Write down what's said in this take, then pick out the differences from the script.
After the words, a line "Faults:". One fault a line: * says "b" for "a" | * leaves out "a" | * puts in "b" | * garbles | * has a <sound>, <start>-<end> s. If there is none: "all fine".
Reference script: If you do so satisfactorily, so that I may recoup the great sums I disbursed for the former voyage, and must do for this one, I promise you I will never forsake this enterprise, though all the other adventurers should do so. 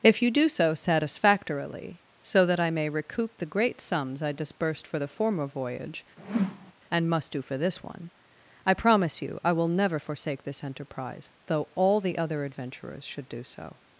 If you do so satisfactorily, so that I may recoup the great sums I disbursed for the former voyage, and must do for this one, I promise you I will never forsake this enterprise, though all the other adventurers should do so.
Faults:
* has a whoosh, 6.2-6.7 s